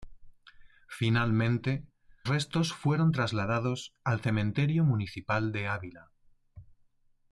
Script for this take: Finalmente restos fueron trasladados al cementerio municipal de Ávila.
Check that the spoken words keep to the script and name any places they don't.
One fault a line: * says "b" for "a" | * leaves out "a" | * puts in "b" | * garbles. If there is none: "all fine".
all fine